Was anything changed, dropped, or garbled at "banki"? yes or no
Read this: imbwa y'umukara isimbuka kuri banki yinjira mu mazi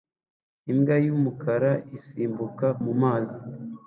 yes